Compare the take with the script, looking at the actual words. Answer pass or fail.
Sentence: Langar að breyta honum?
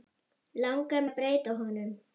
pass